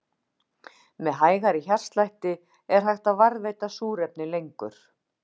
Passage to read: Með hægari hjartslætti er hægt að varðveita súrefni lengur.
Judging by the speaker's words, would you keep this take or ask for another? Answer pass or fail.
pass